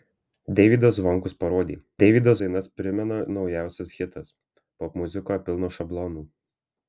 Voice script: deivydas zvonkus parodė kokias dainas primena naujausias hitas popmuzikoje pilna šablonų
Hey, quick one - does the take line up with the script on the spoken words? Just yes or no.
no